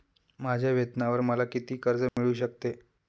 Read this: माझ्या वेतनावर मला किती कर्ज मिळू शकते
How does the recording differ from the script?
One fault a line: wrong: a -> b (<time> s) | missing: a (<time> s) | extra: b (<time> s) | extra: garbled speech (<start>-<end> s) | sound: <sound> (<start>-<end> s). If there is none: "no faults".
sound: dropout (2.1-2.2 s)